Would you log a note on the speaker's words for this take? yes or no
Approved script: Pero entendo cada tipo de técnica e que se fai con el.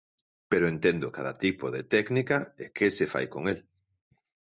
no